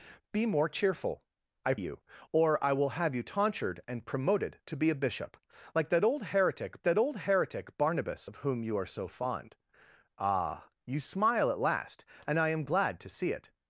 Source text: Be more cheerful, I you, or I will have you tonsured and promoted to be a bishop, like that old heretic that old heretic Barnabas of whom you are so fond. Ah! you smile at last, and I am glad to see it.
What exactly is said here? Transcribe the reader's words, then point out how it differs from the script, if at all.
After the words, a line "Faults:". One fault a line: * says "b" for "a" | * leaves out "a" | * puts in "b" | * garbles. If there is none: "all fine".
Be more cheerful, I you, or I will have you tonsured and promoted to be a bishop, like that old heretic that old heretic Barnabas of whom you are so fond. Ah! you smile at last, and I am glad to see it.
Faults:
all fine